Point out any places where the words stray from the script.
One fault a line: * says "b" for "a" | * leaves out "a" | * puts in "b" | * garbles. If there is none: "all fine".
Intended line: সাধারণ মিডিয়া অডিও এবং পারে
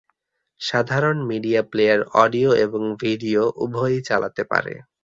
* puts in "প্লেয়ার"
* puts in "ভিডিও উভয়ই চালাতে"